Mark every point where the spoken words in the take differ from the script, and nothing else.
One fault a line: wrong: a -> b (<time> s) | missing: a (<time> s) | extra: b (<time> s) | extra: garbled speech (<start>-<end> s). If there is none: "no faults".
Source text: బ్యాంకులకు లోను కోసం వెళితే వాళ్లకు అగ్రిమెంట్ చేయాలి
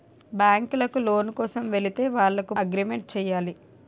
no faults